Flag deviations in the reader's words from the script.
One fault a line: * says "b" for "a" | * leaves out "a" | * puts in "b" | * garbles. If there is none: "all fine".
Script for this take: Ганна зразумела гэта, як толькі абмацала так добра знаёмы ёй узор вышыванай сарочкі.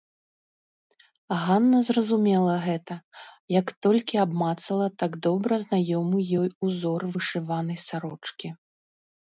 all fine